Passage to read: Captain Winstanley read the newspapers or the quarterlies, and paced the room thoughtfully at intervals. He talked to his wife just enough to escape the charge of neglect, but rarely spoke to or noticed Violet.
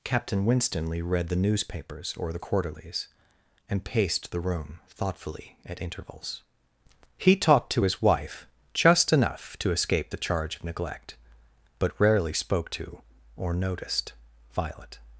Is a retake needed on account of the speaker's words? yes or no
no